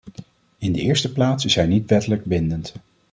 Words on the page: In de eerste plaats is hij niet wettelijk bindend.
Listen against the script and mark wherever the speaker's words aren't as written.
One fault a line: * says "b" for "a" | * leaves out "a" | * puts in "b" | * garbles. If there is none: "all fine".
all fine